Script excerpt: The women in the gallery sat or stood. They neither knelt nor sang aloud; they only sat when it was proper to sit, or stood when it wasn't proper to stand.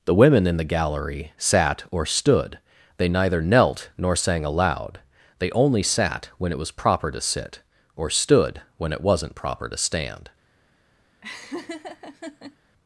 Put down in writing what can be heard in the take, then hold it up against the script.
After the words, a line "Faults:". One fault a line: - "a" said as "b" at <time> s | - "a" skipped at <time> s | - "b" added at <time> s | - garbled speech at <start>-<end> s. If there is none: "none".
The women in the gallery sat or stood. They neither knelt nor sang aloud; they only sat when it was proper to sit, or stood when it wasn't proper to stand.
Faults:
none